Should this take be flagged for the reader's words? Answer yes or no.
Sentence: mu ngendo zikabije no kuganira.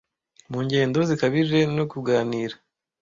no